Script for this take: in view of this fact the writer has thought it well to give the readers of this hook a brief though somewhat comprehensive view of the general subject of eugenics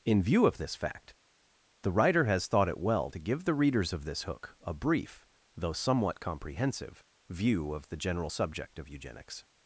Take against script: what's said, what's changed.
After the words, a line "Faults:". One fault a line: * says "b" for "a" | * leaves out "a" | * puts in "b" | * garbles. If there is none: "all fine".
in view of this fact the writer has thought it well to give the readers of this hook a brief though somewhat comprehensive view of the general subject of eugenics
Faults:
all fine